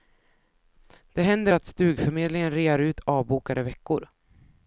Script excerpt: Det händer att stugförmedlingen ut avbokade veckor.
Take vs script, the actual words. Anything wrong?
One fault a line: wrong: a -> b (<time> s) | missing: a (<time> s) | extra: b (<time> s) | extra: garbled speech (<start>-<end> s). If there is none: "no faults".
extra: rear (2.5 s)